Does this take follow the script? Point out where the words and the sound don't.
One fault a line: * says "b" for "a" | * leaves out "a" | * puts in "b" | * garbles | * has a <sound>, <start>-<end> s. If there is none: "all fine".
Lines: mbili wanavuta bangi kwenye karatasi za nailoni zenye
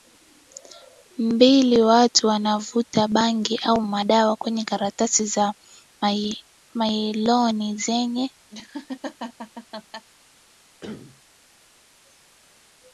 * puts in "watu"
* puts in "au madawa"
* has a laugh, 8.5-10.1 s
* has a cough, 10.8-11.2 s